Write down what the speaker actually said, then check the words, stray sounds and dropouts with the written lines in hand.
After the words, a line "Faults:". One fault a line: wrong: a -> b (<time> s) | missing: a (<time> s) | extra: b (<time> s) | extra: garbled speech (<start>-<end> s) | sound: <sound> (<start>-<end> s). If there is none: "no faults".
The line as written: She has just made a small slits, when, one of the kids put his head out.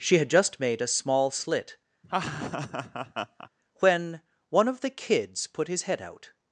She had just made a small slit, when, one of the kids put his head out.
Faults:
wrong: has -> had (0.2 s)
wrong: slits -> slit (1.3 s)
sound: laugh (2.0-3.5 s)